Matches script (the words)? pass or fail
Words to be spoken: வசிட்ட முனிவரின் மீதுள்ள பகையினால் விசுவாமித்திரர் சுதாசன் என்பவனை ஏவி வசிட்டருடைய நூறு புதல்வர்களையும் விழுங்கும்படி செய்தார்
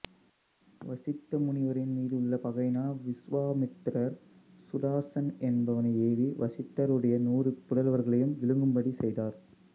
pass